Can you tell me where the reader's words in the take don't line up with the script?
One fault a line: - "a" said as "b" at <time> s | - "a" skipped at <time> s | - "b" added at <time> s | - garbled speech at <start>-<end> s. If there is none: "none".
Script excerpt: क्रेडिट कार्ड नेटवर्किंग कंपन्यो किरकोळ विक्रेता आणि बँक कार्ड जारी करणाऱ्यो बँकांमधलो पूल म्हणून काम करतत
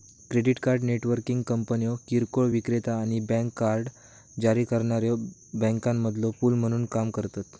none